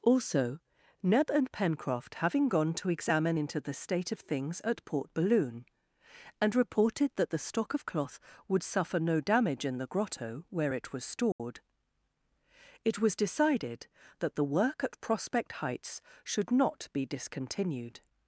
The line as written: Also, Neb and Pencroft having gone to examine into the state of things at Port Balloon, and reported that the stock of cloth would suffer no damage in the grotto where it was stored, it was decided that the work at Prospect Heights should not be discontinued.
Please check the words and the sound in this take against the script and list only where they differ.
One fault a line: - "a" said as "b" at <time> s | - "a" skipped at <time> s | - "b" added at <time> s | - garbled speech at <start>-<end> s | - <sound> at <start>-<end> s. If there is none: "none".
- dropout at 11.3-11.4 s